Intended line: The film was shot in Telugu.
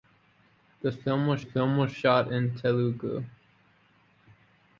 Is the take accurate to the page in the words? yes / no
no